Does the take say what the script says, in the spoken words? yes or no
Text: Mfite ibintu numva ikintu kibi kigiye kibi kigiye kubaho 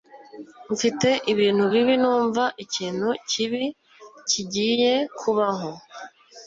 no